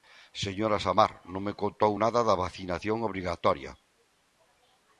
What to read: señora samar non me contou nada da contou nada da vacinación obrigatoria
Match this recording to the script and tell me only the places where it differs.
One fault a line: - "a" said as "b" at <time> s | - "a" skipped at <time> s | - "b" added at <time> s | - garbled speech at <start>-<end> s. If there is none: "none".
- "contou nada da" skipped at 2.4 s